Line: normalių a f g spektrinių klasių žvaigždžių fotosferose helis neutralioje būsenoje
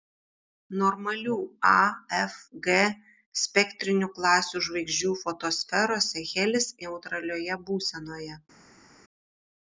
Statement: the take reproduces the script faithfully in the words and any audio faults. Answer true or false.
true